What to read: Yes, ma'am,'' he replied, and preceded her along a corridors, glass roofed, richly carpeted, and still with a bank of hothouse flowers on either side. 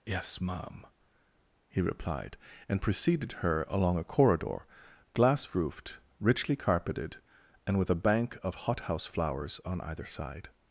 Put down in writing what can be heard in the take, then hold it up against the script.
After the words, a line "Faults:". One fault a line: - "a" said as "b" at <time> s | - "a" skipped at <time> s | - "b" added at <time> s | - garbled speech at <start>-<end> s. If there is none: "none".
Yes, ma'am,'' he replied, and preceded her along a corridor, glass roofed, richly carpeted, and with a bank of hothouse flowers on either side.
Faults:
- "corridors" said as "corridor" at 4.0 s
- "still" skipped at 7.8 s